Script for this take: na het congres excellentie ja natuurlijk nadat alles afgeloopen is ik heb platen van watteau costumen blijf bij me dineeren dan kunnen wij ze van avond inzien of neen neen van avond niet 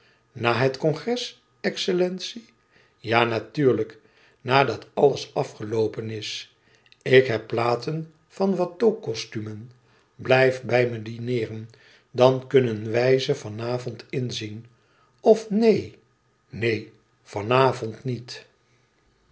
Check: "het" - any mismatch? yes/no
no